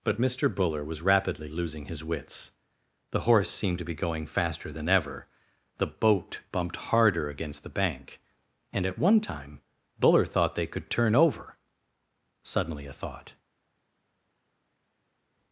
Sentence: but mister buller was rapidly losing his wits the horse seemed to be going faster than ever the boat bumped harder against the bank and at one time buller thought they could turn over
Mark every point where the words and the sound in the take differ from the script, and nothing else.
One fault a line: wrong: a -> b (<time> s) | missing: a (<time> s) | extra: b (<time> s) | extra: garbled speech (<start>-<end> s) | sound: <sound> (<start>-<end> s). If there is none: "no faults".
extra: suddenly a thought (12.4 s)